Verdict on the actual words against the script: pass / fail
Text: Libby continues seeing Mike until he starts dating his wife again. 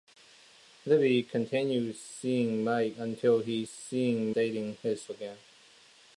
fail